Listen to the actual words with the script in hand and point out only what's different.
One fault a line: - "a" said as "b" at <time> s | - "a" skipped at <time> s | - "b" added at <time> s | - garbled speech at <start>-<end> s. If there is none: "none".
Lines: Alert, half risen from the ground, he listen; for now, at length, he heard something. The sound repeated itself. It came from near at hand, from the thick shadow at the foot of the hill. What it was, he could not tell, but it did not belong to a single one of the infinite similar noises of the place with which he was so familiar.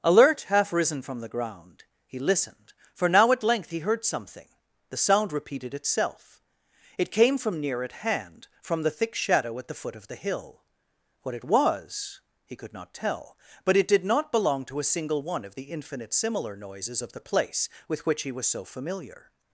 - "listen" said as "listened" at 2.2 s